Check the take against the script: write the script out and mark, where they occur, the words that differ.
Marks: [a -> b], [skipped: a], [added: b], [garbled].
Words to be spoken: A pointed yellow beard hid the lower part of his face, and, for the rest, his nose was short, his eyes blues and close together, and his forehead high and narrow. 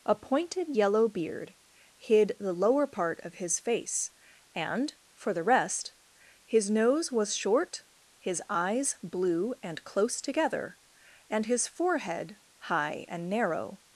A pointed yellow beard hid the lower part of his face, and, for the rest, his nose was short, his eyes [blues -> blue] and close together, and his forehead high and narrow.